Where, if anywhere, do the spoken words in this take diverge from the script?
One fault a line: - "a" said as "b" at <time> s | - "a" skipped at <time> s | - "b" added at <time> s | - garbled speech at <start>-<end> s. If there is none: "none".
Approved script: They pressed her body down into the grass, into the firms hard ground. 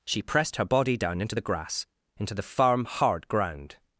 - "They" said as "She" at 0.1 s
- "firms" said as "firm" at 2.4 s